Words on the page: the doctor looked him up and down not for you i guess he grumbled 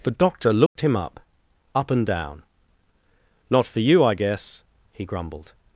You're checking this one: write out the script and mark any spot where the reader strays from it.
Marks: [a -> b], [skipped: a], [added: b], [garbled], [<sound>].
the doctor looked [dropout] him up [added: up] and down not for you i guess he grumbled